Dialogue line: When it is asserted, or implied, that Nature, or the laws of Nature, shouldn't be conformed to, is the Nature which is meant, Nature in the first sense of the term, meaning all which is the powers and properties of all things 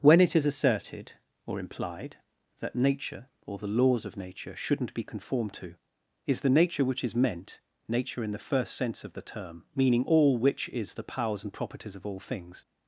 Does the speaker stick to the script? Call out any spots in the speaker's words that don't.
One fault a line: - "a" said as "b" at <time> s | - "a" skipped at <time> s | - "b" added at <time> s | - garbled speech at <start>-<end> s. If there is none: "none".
none